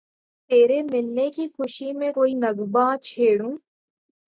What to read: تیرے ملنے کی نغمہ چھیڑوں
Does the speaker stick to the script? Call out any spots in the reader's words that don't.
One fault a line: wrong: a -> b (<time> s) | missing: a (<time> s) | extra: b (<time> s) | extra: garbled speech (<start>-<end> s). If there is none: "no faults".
extra: خوشی میں کوئی (1.5 s)